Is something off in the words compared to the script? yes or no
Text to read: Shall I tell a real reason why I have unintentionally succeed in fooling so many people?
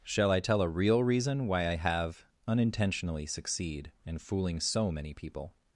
no